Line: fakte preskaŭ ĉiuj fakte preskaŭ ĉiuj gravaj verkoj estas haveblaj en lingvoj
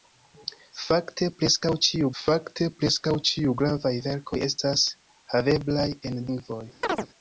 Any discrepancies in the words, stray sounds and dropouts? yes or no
yes